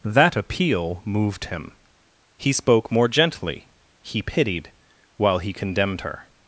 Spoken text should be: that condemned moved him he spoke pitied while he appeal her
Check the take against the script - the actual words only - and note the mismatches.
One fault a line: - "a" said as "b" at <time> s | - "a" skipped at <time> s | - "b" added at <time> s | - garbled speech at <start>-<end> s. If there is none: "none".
- "condemned" said as "appeal" at 0.3 s
- "more gently he" added at 2.9 s
- "appeal" said as "condemned" at 5.5 s